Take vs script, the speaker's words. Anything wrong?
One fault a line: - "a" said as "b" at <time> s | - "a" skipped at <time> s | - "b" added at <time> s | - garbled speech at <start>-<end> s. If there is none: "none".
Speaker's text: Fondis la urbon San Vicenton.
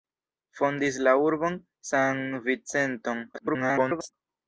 - garbled speech at 3.3-4.1 s